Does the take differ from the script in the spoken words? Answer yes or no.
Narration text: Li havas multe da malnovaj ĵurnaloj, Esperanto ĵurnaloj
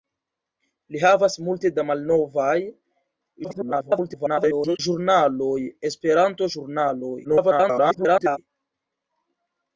yes